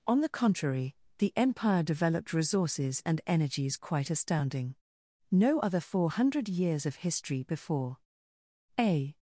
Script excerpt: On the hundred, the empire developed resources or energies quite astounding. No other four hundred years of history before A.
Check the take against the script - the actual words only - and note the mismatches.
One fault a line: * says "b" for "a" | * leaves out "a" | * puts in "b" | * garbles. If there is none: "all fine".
* says "contrary" for "hundred"
* says "and" for "or"